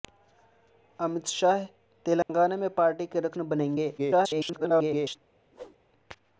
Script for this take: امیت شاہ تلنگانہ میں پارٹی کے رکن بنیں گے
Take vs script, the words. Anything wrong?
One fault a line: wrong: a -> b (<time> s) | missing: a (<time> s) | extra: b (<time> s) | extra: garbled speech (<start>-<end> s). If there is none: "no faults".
extra: garbled speech (4.0-5.2 s)